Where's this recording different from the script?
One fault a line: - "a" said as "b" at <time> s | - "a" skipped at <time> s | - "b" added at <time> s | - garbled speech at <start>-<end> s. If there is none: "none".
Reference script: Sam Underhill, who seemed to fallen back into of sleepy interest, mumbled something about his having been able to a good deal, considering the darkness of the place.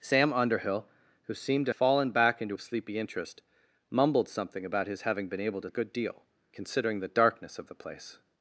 none